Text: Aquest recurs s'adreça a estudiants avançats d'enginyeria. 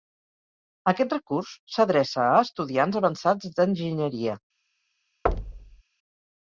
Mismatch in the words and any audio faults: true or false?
true